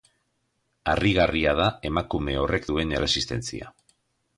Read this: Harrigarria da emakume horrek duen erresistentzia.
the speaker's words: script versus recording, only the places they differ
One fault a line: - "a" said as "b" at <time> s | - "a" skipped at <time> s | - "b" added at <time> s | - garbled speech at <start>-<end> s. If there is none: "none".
none